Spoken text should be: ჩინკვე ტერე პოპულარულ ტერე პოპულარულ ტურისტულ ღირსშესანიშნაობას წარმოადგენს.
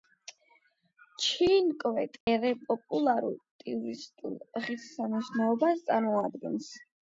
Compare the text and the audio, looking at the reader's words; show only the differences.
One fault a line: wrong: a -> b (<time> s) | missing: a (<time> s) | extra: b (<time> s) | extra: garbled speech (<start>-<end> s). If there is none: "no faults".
missing: ტერე პოპულარულ (3.4 s)